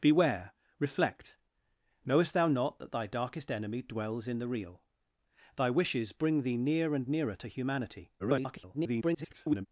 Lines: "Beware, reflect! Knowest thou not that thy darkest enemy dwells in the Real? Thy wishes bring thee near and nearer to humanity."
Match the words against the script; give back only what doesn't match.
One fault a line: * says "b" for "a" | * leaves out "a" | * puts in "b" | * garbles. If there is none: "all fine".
* garbles